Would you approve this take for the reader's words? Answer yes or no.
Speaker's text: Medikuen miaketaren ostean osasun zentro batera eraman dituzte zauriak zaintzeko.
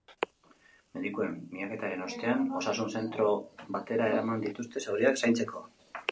yes